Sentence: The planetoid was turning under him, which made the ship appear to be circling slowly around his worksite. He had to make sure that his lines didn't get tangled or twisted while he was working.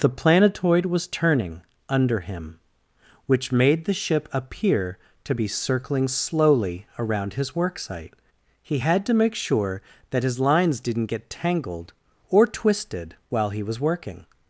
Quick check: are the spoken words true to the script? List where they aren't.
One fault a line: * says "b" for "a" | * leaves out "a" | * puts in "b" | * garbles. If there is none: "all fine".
all fine